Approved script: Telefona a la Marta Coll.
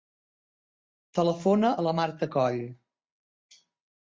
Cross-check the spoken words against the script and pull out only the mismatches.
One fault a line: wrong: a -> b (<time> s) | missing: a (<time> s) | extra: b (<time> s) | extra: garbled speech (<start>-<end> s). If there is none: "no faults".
no faults